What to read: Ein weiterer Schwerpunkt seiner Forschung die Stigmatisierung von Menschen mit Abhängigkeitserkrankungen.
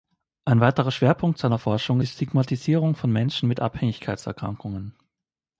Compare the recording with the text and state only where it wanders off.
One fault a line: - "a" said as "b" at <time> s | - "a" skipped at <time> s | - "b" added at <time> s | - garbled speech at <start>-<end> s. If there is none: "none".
none